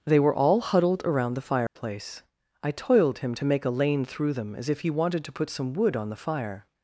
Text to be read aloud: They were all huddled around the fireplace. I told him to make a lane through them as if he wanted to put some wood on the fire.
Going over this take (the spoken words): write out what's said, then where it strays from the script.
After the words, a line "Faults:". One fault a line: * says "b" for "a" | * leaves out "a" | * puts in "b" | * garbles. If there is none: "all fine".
They were all huddled around the fireplace. I toiled him to make a lane through them as if he wanted to put some wood on the fire.
Faults:
* says "toiled" for "told"